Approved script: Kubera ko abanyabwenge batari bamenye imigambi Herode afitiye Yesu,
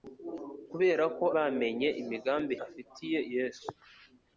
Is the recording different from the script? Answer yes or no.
yes